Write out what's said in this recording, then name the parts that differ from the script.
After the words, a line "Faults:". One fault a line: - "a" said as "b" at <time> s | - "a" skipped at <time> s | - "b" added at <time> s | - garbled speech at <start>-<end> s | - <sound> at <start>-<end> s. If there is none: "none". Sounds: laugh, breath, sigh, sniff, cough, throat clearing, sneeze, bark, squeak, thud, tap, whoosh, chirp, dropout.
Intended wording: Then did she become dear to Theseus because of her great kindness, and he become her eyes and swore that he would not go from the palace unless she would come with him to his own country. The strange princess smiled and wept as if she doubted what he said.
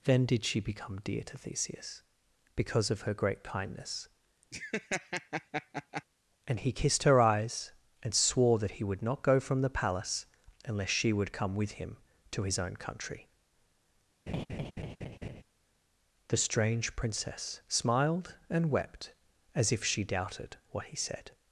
Then did she become dear to Theseus because of her great kindness, and he kissed her eyes and swore that he would not go from the palace unless she would come with him to his own country. The strange princess smiled and wept as if she doubted what he said.
Faults:
- laugh at 4.5-6.0 s
- "become" said as "kissed" at 6.7 s
- laugh at 14.3-15.4 s